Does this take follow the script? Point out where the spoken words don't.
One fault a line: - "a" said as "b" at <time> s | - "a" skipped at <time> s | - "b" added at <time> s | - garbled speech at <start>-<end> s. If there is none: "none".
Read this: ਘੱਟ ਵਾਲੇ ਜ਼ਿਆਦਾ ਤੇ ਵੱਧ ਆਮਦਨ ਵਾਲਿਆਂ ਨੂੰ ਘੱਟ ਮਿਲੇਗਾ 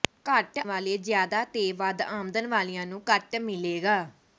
none